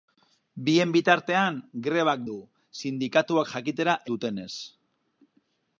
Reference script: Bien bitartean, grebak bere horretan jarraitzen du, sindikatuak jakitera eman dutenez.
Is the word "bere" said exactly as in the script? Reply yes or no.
no